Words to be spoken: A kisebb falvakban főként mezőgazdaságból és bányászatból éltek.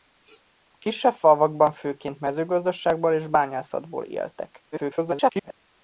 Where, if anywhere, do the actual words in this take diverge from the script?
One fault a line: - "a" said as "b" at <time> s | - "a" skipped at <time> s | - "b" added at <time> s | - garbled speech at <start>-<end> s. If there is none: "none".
- garbled speech at 4.7-5.5 s